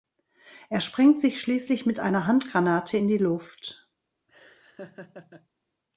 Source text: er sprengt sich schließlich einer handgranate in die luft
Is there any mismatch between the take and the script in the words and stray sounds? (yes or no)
yes